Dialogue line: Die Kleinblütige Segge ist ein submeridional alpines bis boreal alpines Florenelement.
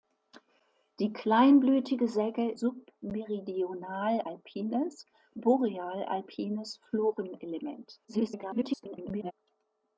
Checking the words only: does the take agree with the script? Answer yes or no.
no